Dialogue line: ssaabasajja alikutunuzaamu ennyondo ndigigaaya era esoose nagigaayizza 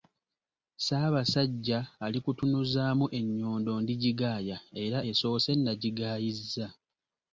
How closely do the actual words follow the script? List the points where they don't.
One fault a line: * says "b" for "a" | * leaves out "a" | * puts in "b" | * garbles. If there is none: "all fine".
all fine